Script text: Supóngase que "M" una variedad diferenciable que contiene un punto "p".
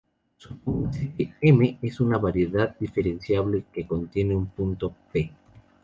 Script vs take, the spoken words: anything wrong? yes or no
yes